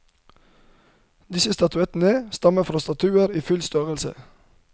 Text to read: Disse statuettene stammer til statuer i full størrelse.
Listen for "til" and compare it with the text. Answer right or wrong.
wrong